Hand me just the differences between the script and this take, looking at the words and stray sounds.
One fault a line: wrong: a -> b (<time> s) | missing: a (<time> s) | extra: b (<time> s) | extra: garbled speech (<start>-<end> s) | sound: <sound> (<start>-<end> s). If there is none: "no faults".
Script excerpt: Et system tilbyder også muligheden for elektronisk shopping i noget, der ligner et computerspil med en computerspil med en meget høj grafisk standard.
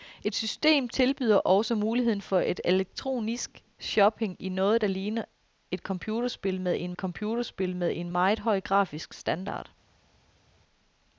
no faults